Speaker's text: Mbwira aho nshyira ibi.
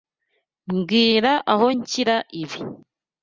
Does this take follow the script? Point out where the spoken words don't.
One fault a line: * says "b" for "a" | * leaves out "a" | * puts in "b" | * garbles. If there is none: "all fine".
all fine